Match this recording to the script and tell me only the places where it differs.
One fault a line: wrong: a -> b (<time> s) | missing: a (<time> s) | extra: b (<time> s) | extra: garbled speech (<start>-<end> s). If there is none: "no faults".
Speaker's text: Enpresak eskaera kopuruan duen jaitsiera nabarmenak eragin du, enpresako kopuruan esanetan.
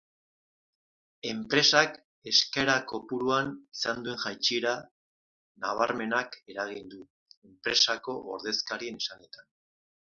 extra: izan (3.8 s)
wrong: kopuruan -> ordezkarien (8.4 s)